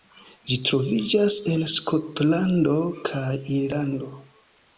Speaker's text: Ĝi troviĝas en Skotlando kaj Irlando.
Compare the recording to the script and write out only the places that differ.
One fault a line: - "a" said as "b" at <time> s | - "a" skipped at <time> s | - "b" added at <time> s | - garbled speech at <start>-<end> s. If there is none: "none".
none